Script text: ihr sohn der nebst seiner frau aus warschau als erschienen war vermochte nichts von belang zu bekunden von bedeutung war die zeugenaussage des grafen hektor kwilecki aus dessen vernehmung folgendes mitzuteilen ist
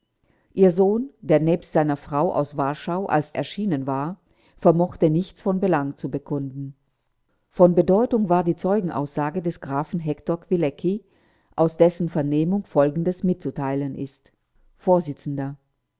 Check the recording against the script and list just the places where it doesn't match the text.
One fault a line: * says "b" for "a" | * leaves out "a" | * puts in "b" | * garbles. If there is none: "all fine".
all fine